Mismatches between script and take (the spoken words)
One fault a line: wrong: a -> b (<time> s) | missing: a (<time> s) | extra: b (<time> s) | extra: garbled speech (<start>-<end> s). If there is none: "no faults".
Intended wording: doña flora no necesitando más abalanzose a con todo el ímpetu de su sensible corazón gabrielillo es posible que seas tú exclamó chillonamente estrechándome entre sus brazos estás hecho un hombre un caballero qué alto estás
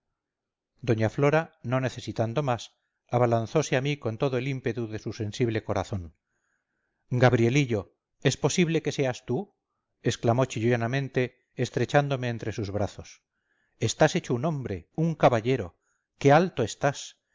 extra: mí (3.8 s)